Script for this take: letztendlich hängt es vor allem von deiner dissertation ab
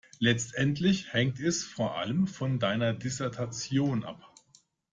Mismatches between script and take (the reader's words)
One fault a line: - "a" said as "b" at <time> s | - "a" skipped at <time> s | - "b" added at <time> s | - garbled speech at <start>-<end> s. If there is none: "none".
none